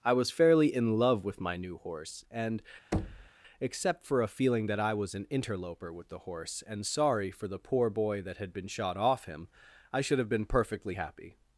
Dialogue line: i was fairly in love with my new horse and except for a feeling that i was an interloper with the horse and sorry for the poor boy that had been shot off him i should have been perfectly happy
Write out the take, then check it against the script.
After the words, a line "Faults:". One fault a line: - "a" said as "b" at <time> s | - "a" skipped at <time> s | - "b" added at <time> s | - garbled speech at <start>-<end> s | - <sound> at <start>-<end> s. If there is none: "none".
i was fairly in love with my new horse and except for a feeling that i was an interloper with the horse and sorry for the poor boy that had been shot off him i should have been perfectly happy
Faults:
- thud at 2.9-3.3 s